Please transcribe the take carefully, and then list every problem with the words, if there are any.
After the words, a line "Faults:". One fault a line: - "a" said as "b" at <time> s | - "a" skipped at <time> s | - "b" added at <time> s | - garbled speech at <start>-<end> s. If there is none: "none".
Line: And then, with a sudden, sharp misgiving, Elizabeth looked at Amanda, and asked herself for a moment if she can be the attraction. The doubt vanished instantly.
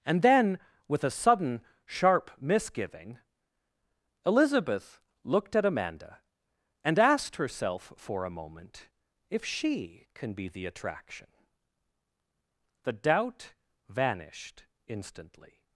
And then, with a sudden, sharp misgiving, Elizabeth looked at Amanda, and asked herself for a moment if she can be the attraction. The doubt vanished instantly.
Faults:
none